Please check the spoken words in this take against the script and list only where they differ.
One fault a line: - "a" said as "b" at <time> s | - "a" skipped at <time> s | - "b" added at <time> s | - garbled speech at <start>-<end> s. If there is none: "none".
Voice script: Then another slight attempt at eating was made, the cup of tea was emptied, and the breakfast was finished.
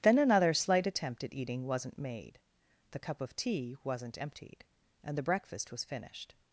- "was" said as "wasn't" at 1.6 s
- "was" said as "wasn't" at 3.8 s